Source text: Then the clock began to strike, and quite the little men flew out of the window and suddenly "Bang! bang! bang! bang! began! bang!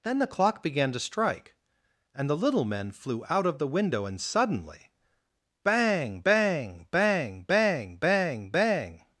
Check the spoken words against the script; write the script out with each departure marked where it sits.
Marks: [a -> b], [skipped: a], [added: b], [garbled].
Then the clock began to strike, and [skipped: quite] the little men flew out of the window and suddenly "Bang! bang! bang! bang! [began! -> bang] bang!